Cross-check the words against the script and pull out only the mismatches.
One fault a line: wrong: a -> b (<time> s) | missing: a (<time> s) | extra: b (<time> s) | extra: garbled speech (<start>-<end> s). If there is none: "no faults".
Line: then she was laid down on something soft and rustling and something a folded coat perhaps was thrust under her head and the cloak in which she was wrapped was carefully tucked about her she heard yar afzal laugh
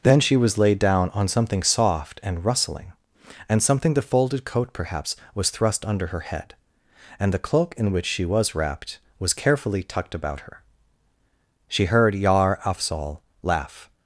wrong: a -> the (3.9 s)